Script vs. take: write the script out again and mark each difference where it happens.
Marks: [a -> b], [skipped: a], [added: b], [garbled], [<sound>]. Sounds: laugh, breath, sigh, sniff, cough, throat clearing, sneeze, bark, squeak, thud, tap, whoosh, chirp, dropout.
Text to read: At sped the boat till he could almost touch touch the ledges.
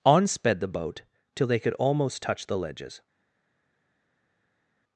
[At -> On] sped the boat till [he -> they] could almost touch [skipped: touch] the ledges.